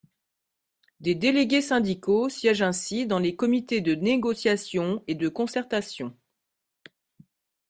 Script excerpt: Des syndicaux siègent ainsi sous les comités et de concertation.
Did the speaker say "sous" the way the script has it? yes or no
no